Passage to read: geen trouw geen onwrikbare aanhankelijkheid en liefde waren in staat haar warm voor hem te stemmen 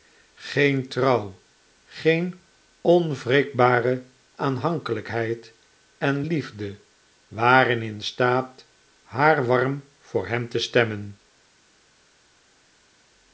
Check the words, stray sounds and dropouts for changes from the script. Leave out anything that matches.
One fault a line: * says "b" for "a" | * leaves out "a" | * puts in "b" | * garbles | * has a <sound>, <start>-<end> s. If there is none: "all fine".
all fine